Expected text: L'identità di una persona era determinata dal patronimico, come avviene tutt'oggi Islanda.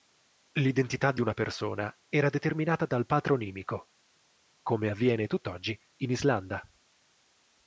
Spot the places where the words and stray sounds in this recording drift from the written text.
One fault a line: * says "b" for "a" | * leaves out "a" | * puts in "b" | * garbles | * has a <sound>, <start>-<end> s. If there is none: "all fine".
* puts in "in"